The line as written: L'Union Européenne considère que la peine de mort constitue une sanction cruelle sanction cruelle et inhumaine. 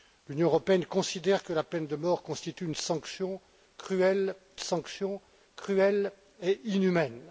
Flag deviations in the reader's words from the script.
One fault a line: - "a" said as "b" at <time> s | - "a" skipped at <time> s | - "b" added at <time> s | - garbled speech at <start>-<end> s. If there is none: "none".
none